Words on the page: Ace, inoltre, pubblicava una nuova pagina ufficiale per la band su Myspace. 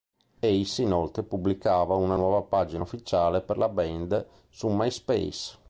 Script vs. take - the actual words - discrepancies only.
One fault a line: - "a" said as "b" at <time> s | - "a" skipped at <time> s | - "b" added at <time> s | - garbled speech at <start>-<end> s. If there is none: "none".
none